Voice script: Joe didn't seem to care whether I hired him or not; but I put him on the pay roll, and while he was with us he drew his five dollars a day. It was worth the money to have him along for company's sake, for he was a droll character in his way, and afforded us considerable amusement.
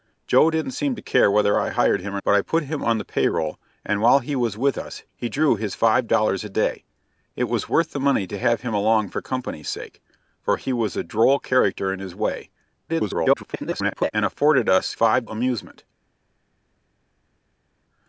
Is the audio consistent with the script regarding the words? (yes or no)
no